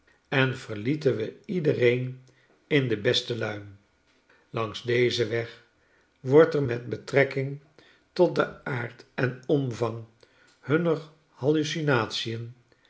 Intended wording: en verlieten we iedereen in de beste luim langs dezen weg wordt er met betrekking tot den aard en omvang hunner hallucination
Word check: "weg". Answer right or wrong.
right